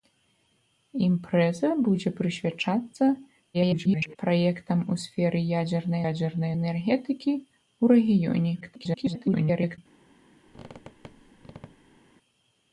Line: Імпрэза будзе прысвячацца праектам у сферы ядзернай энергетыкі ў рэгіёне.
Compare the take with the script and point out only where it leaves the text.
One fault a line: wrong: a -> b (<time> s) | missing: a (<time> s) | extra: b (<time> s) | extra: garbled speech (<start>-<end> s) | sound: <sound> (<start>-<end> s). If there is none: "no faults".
extra: garbled speech (3.5-4.2 s)
extra: ядзернай (6.1 s)
extra: garbled speech (8.6-9.8 s)
sound: squeak (10.5-12.0 s)